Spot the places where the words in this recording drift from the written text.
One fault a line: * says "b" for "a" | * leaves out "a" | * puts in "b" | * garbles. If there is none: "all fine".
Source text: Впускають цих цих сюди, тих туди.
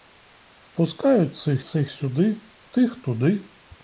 all fine